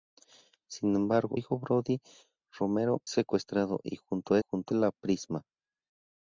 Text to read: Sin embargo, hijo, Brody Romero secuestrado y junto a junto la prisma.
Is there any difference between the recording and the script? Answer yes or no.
no